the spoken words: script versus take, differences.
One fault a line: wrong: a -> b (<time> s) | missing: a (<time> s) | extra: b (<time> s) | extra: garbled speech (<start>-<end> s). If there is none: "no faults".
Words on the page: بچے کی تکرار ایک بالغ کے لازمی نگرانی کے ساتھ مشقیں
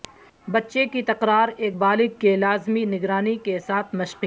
no faults